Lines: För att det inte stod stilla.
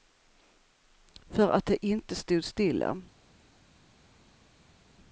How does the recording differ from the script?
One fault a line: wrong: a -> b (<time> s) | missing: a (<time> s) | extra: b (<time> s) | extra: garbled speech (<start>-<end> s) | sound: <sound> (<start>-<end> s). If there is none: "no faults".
no faults